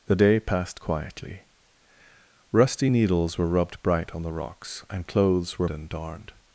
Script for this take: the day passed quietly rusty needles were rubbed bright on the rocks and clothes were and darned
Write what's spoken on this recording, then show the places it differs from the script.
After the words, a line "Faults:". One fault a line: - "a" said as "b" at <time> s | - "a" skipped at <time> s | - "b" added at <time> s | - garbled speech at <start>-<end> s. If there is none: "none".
the day passed quietly rusty needles were rubbed bright on the rocks and clothes were and darned
Faults:
none